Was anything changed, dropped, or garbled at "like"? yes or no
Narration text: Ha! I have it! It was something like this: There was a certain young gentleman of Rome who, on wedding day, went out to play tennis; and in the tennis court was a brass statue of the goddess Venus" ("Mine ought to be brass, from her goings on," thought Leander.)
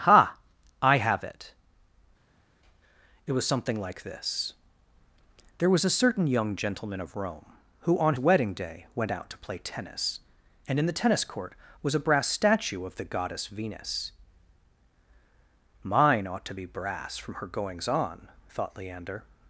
no